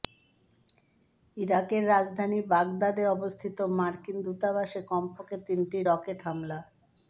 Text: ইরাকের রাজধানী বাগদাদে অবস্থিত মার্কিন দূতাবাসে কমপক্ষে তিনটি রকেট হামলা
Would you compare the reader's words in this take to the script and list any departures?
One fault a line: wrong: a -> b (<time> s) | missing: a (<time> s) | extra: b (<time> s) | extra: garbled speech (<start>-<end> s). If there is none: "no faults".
no faults